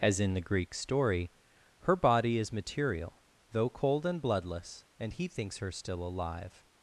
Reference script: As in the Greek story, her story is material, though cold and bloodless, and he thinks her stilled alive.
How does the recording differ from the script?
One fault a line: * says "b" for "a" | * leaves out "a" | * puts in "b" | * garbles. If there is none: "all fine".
* says "body" for "story"
* says "still" for "stilled"